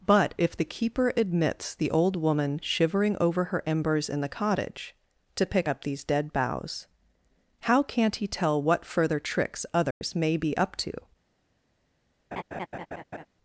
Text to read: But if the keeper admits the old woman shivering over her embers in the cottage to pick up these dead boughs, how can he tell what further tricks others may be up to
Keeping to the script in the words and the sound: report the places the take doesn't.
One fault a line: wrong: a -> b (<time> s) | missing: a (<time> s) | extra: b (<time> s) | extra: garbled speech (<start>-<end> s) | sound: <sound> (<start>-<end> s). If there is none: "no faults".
wrong: can -> can't (7.8 s)
sound: dropout (9.9-10.0 s)
sound: laugh (12.3-13.3 s)